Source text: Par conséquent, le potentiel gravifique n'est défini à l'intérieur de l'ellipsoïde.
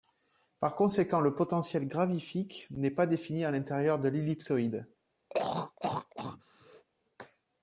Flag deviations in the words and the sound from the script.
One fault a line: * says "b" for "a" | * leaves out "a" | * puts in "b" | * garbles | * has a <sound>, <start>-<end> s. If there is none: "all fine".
* puts in "pas"
* has a throat clearing, 5.3-6.8 s